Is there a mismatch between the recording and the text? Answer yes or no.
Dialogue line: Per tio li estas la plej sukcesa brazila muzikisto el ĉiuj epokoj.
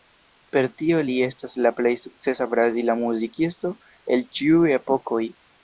no